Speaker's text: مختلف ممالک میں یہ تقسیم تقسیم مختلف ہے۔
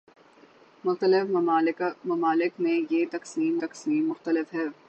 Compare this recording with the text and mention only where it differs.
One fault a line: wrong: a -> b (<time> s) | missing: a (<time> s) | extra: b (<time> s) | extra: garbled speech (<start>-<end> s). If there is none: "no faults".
no faults